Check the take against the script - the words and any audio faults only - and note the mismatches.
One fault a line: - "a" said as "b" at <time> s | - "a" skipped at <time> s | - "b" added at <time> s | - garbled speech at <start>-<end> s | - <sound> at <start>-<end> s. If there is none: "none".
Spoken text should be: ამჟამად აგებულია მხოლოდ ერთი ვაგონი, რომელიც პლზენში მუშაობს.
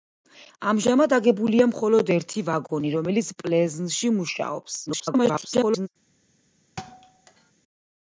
- garbled speech at 4.9-5.9 s
- thud at 6.8-7.5 s